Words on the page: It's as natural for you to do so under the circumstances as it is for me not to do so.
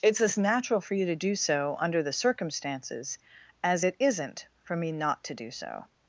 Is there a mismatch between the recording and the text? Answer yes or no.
yes